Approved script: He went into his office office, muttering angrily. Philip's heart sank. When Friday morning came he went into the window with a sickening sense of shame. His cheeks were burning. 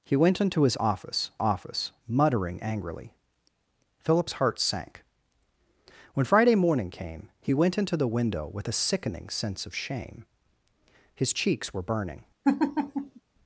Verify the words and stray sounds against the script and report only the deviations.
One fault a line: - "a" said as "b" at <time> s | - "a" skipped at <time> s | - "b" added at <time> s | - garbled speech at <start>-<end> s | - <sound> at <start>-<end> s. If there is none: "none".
- laugh at 12.4-13.2 s